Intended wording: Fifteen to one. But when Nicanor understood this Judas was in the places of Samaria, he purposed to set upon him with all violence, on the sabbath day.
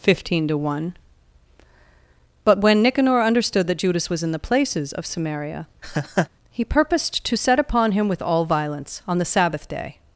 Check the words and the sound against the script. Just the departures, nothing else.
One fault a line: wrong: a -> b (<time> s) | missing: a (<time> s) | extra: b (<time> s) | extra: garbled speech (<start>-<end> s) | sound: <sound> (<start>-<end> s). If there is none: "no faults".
wrong: this -> that (3.7 s)
sound: laugh (5.8-6.3 s)